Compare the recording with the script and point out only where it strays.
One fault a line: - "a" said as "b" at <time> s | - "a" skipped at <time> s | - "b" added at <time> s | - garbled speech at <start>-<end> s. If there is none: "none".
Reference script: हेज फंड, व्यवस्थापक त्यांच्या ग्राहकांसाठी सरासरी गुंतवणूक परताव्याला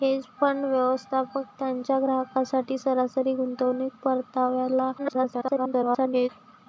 - garbled speech at 5.0-6.3 s